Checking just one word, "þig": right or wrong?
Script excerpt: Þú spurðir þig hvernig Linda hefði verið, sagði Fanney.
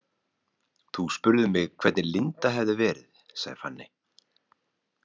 wrong